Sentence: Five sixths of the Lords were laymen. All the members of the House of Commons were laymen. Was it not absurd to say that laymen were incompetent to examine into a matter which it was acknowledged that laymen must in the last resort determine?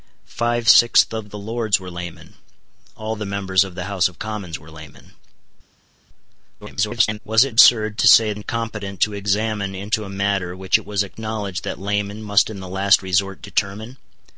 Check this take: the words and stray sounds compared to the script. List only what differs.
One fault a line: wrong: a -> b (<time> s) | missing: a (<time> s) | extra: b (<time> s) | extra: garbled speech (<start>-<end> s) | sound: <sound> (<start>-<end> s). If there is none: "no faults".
extra: garbled speech (6.6-7.2 s)
missing: not (7.5 s)
missing: that laymen were (8.3 s)